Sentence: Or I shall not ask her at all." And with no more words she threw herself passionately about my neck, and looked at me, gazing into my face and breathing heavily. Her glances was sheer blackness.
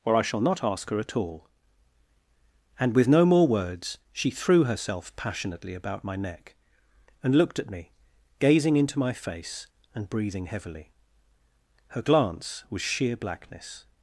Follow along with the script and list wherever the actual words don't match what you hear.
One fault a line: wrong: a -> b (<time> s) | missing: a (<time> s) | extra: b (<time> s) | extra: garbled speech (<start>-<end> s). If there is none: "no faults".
wrong: glances -> glance (12.0 s)